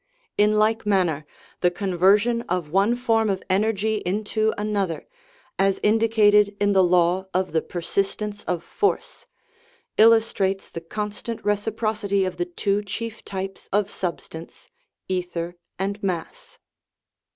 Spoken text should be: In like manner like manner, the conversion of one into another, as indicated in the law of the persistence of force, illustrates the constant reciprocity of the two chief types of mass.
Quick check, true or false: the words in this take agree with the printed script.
false